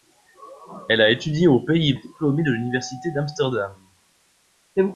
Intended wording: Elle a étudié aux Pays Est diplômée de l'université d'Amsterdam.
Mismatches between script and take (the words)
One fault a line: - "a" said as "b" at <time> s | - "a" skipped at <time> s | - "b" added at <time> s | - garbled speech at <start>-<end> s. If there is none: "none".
none